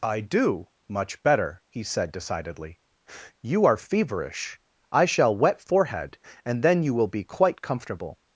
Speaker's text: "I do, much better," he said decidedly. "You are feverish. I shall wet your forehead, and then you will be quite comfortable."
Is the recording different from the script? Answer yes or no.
yes